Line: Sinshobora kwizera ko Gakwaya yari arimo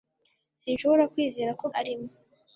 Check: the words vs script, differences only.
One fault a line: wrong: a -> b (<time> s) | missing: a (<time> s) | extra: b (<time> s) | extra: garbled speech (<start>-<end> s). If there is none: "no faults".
missing: Gakwaya yari (1.6 s)